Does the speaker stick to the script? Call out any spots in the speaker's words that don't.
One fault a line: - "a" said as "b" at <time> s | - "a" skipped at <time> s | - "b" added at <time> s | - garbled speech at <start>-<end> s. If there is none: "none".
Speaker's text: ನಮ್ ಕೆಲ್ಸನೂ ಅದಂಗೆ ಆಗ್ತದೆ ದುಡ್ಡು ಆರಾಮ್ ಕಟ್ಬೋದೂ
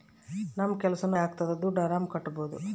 - "ಅದಂಗೆ" skipped at 1.2 s